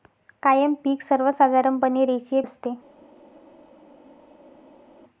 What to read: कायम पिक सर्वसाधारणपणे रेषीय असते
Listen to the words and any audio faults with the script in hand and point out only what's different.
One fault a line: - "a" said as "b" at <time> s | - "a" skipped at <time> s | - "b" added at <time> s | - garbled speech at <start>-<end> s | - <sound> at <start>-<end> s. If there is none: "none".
none